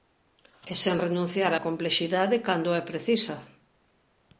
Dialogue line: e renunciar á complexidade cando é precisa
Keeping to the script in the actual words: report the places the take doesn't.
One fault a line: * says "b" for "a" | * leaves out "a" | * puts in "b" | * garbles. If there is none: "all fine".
* puts in "sen"